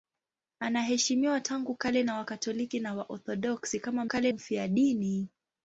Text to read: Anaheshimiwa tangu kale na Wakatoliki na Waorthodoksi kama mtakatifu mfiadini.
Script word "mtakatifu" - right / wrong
wrong